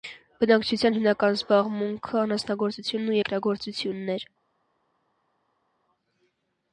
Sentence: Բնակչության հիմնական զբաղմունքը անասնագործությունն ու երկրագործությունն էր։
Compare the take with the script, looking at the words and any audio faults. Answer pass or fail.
pass